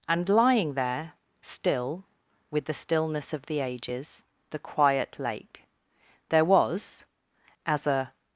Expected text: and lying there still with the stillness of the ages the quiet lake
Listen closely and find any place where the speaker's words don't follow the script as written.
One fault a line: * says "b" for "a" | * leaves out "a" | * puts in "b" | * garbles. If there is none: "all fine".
* puts in "there was as a"